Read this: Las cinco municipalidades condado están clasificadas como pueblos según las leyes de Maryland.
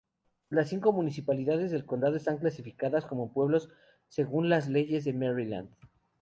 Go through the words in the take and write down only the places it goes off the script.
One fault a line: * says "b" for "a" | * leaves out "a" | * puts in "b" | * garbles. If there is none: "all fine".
* puts in "del"